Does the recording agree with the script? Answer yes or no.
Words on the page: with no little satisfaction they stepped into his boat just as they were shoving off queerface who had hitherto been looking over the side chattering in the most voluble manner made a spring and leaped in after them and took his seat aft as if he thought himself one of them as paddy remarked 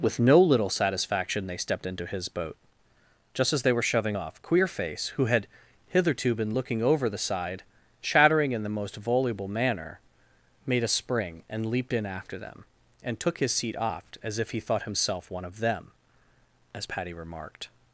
yes